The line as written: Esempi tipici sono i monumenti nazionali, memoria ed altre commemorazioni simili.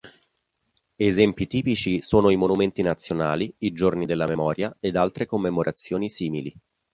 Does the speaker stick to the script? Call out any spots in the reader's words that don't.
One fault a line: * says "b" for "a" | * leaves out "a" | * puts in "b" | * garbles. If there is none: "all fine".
* puts in "i giorni della"